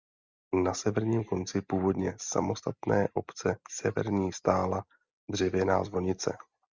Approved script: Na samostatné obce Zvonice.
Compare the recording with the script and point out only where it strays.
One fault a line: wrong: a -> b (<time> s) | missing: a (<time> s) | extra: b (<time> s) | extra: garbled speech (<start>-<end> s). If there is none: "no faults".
extra: severním konci původně (0.7 s)
extra: Severní stála dřevěná (3.7 s)